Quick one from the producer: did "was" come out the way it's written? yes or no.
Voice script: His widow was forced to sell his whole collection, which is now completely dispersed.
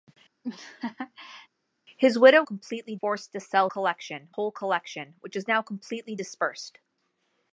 no